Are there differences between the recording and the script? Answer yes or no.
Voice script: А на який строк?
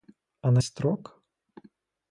yes